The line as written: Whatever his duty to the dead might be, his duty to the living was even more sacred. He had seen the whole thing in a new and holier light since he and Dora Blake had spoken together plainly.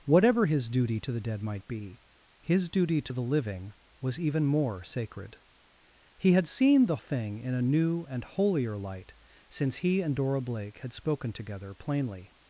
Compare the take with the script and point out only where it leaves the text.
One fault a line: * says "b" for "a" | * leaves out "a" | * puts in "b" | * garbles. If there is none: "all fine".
* leaves out "whole"